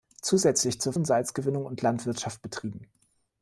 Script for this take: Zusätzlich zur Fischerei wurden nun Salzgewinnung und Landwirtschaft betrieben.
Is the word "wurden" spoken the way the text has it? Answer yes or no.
no